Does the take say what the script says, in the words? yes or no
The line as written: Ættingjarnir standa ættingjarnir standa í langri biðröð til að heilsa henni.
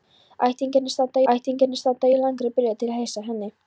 yes